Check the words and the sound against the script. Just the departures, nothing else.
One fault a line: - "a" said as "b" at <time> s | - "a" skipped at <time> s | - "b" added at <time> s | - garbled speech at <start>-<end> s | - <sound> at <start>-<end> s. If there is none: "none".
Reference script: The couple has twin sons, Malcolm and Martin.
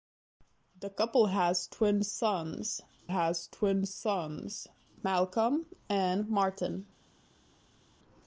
- "has twin sons" added at 3.1 s